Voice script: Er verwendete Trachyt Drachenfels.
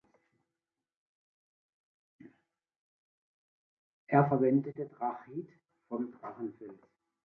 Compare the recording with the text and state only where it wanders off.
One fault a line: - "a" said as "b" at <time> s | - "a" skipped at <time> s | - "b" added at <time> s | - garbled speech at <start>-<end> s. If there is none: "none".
- "vom" added at 5.9 s